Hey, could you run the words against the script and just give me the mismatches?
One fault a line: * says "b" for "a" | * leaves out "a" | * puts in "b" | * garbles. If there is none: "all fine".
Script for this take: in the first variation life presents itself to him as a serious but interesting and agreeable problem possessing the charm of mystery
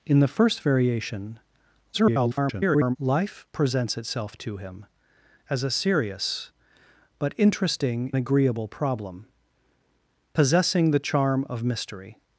* garbles
* leaves out "and"